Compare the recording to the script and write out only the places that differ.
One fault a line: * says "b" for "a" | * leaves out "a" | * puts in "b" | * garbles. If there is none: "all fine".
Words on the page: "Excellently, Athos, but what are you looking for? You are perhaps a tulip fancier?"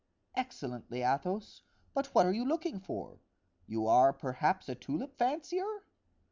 all fine